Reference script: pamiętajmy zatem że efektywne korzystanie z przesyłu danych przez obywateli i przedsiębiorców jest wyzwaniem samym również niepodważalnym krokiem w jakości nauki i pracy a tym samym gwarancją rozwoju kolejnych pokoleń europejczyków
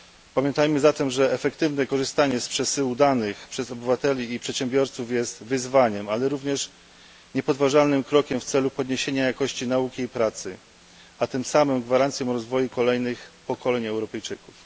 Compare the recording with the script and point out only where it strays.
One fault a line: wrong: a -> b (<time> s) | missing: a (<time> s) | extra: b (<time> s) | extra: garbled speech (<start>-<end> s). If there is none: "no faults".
wrong: samym -> ale (6.1 s)
extra: celu podniesienia (8.4 s)